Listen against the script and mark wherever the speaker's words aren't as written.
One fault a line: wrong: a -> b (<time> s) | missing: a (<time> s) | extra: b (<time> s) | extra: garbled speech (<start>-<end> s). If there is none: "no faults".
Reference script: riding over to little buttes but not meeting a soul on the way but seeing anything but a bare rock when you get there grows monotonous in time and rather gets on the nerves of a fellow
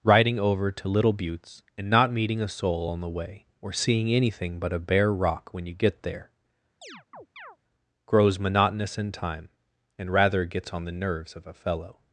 wrong: but -> and (1.8 s)
wrong: but -> or (3.6 s)